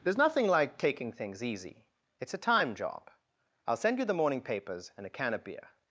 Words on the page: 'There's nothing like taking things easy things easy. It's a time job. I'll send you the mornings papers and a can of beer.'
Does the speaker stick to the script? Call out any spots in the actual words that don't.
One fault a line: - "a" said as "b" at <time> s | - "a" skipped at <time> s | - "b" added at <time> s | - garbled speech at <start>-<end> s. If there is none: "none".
- "things easy" skipped at 1.9 s
- "mornings" said as "morning" at 4.2 s